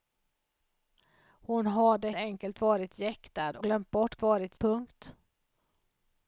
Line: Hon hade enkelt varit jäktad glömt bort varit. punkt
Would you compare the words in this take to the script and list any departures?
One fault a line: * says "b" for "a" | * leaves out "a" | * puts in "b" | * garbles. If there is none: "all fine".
all fine